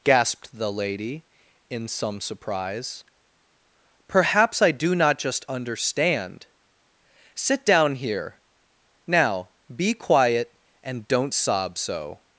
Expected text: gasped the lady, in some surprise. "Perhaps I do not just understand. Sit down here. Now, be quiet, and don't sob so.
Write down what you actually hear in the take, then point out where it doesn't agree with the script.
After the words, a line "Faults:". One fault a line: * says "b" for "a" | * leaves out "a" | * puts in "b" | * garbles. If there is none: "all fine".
gasped the lady, in some surprise. "Perhaps I do not just understand. Sit down here. Now, be quiet, and don't sob so.
Faults:
all fine